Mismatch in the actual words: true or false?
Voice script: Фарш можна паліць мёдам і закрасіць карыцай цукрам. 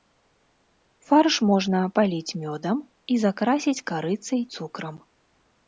false